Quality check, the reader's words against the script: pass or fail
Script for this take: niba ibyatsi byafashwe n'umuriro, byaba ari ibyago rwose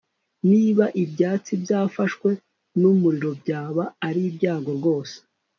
pass